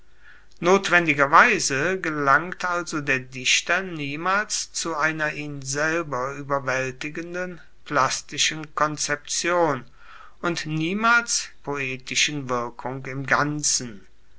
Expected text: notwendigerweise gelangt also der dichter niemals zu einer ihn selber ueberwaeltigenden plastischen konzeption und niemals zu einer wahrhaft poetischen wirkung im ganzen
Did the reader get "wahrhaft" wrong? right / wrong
wrong